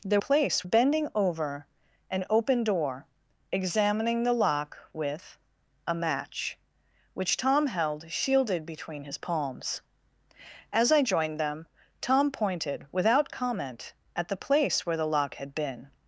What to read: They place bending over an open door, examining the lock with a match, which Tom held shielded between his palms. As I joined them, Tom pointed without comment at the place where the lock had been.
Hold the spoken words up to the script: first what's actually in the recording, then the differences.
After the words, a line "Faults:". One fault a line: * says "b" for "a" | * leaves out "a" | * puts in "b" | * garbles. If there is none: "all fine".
They place bending over an open door, examining the lock with a match, which Tom held shielded between his palms. As I joined them, Tom pointed without comment at the place where the lock had been.
Faults:
all fine